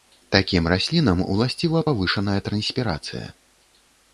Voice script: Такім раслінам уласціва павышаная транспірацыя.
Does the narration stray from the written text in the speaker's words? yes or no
no